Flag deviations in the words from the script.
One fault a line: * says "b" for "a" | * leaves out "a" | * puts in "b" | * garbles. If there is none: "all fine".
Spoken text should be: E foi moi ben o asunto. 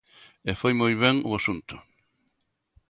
all fine